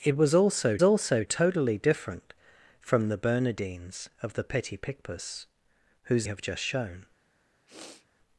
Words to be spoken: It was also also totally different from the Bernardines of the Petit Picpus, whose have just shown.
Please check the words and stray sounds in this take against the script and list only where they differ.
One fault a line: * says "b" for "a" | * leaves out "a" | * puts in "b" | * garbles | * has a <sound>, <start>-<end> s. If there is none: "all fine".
* has a sniff, 7.7-8.1 s